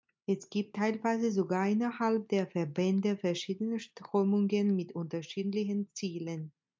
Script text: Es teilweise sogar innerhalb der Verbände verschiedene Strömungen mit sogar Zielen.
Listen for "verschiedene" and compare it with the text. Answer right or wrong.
right